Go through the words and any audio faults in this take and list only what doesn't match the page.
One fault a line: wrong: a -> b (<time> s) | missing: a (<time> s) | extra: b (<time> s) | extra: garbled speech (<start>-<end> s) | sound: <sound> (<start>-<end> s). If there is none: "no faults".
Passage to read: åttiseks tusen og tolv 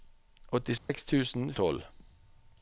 sound: dropout (0.8-0.9 s)